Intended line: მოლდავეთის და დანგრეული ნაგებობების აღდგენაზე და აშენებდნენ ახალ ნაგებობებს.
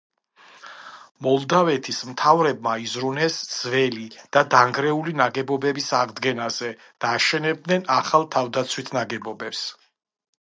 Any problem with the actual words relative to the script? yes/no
yes